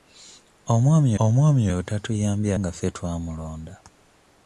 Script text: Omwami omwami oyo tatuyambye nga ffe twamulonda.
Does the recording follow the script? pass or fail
pass